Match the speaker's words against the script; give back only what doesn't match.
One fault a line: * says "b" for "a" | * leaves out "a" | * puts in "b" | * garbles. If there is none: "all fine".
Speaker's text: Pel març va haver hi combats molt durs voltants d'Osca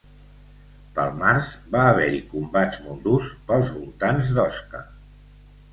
* puts in "pels"